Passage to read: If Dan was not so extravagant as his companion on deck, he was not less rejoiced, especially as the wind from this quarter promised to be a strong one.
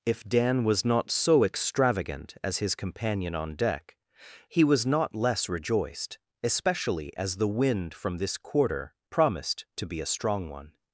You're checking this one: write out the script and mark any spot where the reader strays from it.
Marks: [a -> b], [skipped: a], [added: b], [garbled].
If Dan was not so extravagant as his companion on deck, he was not less rejoiced, especially as the wind from this quarter promised to be a strong one.